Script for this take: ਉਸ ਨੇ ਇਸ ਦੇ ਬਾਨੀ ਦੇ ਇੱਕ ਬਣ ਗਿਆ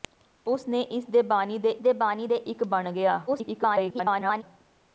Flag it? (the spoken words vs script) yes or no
yes